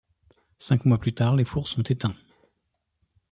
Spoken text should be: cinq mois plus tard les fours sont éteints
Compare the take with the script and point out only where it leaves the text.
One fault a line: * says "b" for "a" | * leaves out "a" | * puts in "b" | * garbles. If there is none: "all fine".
all fine